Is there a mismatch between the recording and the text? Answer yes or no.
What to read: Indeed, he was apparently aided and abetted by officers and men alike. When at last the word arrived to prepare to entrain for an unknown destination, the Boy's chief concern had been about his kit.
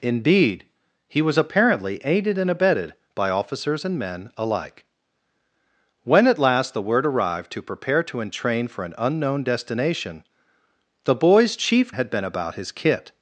yes